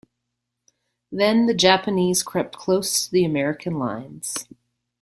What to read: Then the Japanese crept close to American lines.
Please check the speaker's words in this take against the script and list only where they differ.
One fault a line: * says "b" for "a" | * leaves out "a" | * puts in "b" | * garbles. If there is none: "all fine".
* puts in "the"